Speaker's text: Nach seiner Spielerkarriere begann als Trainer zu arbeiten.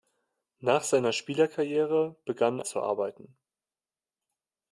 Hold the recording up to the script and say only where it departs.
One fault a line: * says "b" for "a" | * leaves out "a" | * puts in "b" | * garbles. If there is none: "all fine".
* leaves out "als Trainer"